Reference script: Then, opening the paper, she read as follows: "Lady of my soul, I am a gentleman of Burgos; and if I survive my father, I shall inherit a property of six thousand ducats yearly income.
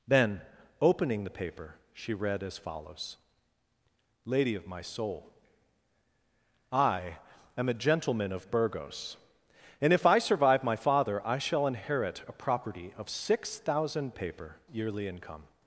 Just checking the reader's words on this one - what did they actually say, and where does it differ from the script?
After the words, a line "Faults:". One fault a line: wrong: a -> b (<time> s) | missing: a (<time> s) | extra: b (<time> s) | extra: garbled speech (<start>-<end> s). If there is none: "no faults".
Then, opening the paper, she read as follows: "Lady of my soul, I am a gentleman of Burgos; and if I survive my father, I shall inherit a property of six thousand paper yearly income.
Faults:
wrong: ducats -> paper (14.1 s)